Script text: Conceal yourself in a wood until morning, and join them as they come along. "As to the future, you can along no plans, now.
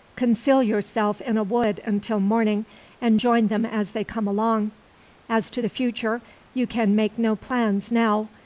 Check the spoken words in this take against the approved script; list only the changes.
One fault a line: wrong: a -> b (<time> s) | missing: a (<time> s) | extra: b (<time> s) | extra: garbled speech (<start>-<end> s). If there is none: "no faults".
wrong: along -> make (6.9 s)